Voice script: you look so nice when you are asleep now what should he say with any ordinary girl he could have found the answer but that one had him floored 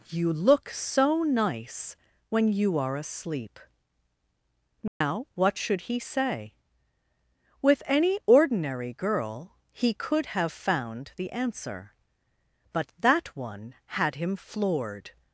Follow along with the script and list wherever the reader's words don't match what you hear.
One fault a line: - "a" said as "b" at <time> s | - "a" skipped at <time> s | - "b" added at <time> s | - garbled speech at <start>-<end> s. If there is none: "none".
none